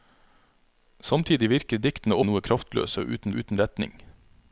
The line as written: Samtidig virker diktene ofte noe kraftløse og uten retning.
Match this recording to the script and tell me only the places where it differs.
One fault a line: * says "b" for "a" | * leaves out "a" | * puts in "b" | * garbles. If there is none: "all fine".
* leaves out "ofte"
* puts in "og uten"